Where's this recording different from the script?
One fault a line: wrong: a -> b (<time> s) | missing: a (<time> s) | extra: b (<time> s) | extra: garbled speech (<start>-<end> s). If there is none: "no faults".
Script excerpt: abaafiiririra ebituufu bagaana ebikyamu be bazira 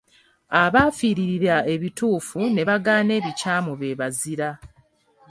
extra: ne (2.5 s)